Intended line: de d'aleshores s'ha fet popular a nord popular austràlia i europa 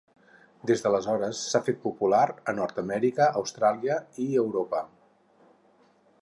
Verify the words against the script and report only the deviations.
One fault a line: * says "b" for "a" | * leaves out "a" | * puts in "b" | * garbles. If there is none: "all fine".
* says "des" for "de"
* says "amèrica" for "popular"